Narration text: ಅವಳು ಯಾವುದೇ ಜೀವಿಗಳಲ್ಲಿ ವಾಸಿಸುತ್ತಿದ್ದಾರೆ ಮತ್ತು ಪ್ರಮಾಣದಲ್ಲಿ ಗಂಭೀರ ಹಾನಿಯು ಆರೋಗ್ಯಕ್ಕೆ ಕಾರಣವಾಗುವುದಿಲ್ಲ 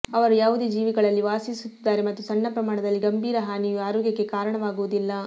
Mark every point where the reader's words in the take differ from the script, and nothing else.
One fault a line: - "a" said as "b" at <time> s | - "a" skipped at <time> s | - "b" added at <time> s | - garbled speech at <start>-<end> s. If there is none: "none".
- "ಅವಳು" said as "ಅವರು" at 0.1 s
- "ಸಣ್ಣ" added at 2.2 s